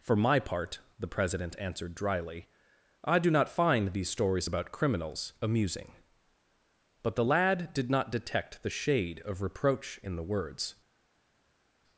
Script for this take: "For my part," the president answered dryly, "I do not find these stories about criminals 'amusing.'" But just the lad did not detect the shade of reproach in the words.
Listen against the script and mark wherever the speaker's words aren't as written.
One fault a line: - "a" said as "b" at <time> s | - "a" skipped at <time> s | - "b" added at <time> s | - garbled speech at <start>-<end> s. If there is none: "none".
- "just" skipped at 7.2 s